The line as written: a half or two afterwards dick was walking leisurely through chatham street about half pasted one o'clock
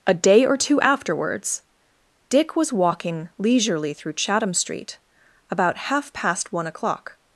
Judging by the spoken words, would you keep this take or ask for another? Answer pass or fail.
fail